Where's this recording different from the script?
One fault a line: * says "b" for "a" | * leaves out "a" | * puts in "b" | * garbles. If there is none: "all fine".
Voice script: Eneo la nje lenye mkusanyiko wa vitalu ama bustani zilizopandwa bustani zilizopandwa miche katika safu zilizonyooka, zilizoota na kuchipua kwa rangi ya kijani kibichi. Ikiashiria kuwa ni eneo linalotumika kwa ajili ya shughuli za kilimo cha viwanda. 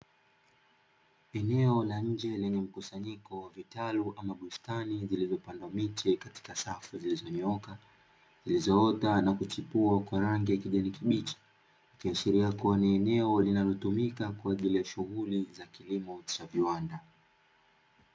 * leaves out "bustani zilizopandwa"